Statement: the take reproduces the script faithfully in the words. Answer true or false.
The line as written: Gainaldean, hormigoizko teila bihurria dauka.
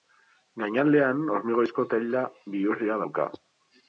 true